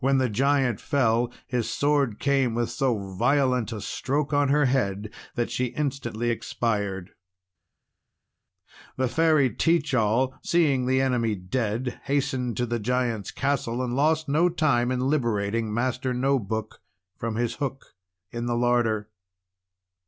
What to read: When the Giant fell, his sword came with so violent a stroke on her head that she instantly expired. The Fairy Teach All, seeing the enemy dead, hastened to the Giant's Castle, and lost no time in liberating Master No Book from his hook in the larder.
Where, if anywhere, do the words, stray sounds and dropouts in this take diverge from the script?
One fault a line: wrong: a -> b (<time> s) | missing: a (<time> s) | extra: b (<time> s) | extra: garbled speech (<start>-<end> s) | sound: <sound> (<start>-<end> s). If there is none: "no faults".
no faults